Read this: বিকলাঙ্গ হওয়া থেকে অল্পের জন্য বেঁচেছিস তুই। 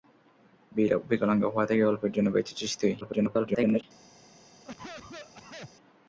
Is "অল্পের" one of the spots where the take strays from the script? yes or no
no